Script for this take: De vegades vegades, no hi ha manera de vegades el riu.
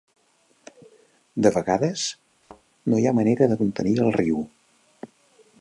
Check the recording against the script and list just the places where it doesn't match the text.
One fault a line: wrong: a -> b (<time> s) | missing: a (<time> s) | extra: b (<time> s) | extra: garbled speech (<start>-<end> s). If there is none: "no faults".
missing: vegades (2.1 s)
wrong: vegades -> contenir (3.6 s)